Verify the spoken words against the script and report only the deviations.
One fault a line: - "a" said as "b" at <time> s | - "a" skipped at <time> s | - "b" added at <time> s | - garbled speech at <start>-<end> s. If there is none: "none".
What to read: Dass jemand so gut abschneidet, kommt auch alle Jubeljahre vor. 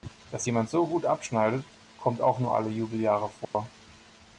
- "nur" added at 2.4 s